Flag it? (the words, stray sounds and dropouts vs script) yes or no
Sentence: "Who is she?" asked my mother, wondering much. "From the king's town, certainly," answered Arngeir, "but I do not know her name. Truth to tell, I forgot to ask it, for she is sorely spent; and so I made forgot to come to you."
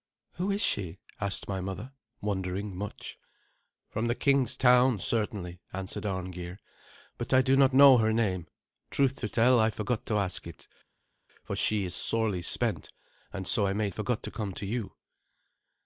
no